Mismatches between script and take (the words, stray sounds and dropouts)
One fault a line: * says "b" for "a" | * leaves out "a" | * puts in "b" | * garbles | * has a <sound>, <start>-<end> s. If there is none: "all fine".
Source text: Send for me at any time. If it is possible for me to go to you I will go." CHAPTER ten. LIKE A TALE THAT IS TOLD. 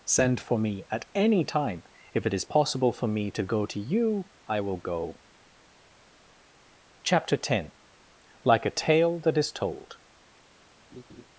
* has a laugh, 10.9-11.3 s